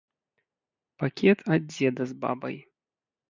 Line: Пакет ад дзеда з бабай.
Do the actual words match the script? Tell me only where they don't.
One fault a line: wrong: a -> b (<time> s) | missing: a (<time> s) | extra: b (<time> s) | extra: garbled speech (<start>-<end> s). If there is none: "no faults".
no faults